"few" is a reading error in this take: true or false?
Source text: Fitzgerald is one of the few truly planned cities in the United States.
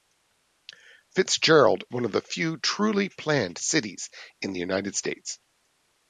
false